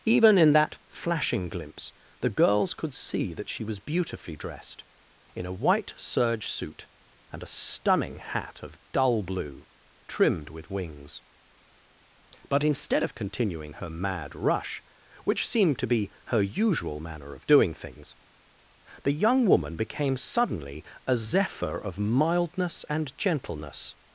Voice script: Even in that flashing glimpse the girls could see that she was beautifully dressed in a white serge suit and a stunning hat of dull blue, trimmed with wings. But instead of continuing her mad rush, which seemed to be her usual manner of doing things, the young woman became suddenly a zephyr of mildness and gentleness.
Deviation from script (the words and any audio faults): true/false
false